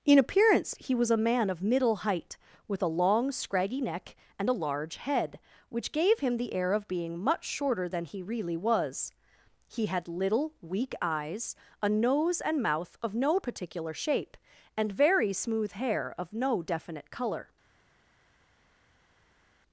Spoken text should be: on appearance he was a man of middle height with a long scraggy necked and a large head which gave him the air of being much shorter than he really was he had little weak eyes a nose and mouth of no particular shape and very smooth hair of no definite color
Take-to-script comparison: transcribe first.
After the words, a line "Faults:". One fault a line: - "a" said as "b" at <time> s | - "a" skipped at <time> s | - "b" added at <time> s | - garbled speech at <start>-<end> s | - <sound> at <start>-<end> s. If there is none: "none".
in appearance he was a man of middle height with a long scraggy neck and a large head which gave him the air of being much shorter than he really was he had little weak eyes a nose and mouth of no particular shape and very smooth hair of no definite color
Faults:
- "on" said as "in" at 0.0 s
- "necked" said as "neck" at 3.8 s